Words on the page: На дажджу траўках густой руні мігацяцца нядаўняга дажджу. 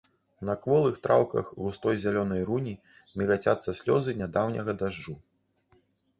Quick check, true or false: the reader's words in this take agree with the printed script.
false